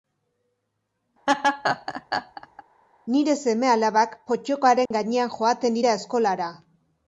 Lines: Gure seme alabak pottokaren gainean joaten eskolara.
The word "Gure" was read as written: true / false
false